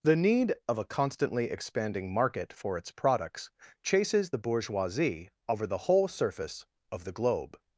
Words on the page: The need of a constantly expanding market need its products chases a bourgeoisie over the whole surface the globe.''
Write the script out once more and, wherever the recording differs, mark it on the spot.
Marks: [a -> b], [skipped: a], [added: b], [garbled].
The need of a constantly expanding market [need -> for] its products chases [a -> the] bourgeoisie over the whole surface [added: of] the globe.''